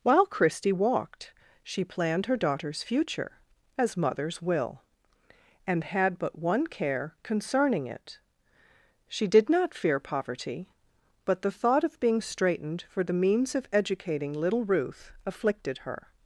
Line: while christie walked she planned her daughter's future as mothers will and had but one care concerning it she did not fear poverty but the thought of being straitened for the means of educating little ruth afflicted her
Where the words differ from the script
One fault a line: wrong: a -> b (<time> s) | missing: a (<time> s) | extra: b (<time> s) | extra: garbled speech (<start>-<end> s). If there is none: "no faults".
no faults